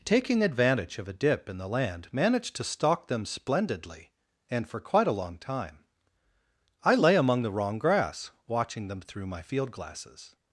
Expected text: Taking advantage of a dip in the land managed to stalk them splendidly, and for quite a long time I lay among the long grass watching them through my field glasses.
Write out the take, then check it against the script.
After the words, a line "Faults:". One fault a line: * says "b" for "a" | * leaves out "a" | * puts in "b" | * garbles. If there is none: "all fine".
Taking advantage of a dip in the land managed to stalk them splendidly, and for quite a long time I lay among the wrong grass watching them through my field glasses.
Faults:
* says "wrong" for "long"